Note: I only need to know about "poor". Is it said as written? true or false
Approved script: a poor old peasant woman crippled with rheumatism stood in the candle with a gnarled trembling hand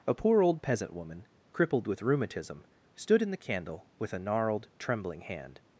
true